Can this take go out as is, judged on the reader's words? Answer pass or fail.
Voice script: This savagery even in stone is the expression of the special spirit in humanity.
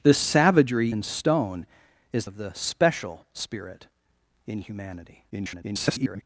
fail